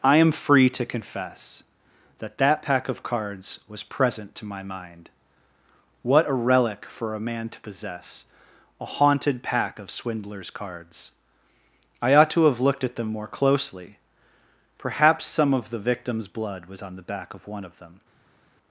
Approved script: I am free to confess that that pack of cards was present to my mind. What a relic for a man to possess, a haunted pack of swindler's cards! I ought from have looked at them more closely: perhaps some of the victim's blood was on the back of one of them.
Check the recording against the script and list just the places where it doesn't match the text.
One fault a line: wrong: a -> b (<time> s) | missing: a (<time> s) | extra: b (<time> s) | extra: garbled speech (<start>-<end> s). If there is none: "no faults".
wrong: from -> to (12.3 s)